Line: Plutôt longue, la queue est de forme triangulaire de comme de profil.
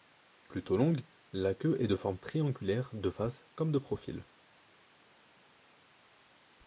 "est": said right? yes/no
yes